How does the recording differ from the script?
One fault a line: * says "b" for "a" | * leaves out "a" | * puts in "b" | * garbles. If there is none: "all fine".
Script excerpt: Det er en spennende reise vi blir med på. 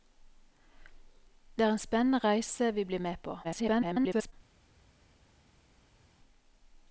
* garbles